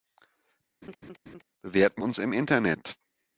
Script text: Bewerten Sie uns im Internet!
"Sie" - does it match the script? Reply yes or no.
no